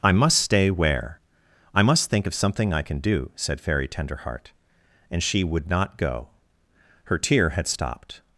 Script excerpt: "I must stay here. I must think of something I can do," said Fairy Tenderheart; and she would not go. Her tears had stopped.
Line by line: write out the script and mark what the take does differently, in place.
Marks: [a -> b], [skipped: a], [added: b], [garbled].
"I must stay [here. -> where] I must think of something I can do," said Fairy Tenderheart; and she would not go. Her [tears -> tear] had stopped.